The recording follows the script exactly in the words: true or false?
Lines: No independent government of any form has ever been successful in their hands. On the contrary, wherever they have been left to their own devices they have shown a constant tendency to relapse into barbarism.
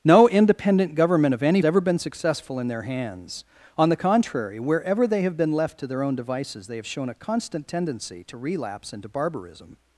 false